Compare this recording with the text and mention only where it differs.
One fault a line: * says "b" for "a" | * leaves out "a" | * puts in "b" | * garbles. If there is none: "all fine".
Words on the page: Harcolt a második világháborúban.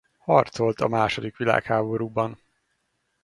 all fine